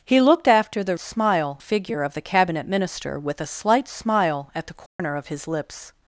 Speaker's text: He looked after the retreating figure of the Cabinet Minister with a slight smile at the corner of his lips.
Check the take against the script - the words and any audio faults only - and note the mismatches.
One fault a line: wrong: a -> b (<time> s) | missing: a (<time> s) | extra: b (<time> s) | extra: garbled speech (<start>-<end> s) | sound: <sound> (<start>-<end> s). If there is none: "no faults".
wrong: retreating -> smile (1.0 s)
sound: dropout (4.9-5.0 s)